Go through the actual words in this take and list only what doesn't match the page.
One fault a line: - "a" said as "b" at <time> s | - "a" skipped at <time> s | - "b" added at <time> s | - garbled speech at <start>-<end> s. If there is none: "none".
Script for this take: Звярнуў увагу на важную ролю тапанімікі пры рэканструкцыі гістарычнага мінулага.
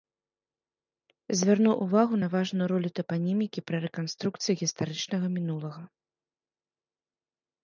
none